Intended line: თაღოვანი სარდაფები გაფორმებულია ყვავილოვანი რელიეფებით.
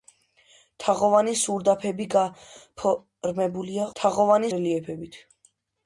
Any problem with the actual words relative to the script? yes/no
yes